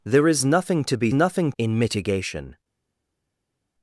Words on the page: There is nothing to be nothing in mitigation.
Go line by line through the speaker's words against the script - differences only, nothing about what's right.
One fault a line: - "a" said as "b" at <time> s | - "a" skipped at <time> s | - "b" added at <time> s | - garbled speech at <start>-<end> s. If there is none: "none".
none